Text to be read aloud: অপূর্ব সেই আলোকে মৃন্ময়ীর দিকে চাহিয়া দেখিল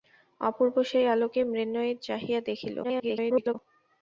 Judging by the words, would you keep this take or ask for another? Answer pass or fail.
fail